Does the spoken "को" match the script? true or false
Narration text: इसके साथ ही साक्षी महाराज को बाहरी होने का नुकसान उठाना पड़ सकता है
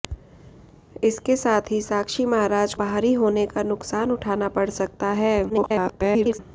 false